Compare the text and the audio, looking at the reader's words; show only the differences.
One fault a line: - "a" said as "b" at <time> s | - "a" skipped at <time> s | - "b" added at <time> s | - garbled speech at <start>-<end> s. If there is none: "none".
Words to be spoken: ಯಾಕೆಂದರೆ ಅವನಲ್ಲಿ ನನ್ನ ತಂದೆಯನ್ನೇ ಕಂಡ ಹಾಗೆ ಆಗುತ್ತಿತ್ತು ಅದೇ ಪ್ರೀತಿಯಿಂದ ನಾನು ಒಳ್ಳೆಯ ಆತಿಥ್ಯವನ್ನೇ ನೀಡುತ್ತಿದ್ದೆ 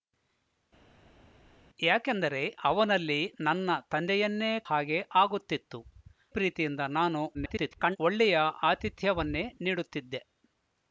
- "ಕಂಡ" skipped at 4.5 s
- "ಅದೇ" skipped at 5.8 s
- garbled speech at 7.3-8.0 s